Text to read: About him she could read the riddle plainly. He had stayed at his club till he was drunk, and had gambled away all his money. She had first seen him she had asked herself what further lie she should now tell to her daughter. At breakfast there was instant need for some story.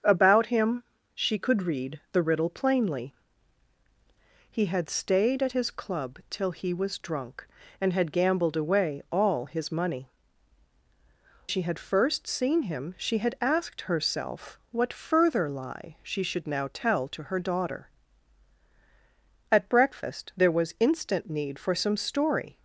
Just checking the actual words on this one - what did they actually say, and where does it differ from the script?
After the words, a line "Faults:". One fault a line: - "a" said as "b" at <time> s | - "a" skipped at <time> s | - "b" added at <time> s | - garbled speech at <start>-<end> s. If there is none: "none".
About him she could read the riddle plainly. He had stayed at his club till he was drunk, and had gambled away all his money. She had first seen him she had asked herself what further lie she should now tell to her daughter. At breakfast there was instant need for some story.
Faults:
none